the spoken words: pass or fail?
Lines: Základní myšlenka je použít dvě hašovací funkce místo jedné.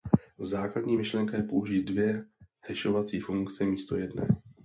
pass